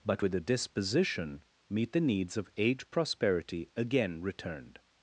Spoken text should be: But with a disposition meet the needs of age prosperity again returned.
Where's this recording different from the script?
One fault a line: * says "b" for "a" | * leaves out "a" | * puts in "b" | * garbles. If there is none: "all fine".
all fine